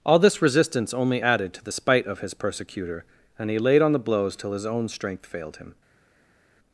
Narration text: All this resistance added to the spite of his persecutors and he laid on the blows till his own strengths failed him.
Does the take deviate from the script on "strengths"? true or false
true